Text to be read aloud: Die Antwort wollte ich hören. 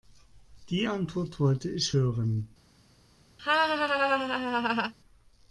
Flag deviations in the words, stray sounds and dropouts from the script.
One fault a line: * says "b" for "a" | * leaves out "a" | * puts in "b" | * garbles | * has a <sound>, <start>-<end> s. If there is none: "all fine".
* has a laugh, 3.4-4.9 s